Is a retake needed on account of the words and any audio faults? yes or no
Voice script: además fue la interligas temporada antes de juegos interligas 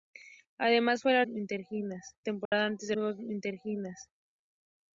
yes